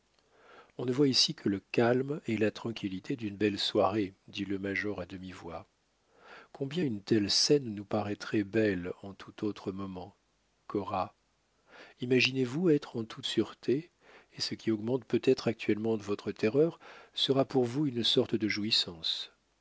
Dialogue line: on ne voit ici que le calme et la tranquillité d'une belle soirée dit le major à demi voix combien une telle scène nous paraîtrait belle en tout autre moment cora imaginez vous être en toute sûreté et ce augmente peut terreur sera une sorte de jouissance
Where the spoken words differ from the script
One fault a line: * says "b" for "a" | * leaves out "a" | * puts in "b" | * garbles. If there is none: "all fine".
* puts in "qui"
* puts in "être actuellement votre"
* puts in "pour vous"